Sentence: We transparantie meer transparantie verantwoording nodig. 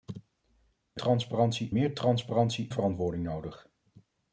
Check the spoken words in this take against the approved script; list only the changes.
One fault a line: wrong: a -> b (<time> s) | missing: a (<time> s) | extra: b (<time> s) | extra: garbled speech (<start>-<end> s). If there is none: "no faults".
no faults